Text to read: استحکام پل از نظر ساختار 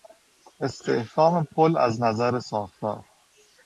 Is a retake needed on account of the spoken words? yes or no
no